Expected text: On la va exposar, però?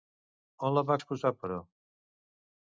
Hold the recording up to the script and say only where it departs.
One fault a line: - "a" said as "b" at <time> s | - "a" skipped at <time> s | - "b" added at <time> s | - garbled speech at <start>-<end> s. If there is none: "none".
none